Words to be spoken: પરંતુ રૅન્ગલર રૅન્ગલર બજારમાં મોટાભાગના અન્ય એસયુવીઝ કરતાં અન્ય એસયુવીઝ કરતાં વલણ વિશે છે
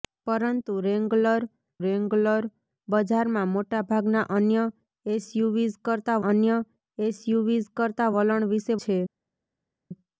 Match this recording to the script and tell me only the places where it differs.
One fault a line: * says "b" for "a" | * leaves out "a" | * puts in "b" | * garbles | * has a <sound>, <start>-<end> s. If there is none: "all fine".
all fine